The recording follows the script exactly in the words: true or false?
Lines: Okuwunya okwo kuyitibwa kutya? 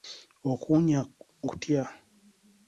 false